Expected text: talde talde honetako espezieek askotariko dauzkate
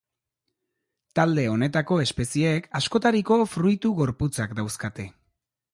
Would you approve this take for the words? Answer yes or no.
no